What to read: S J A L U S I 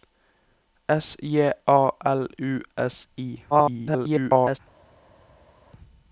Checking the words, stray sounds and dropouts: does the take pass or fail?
fail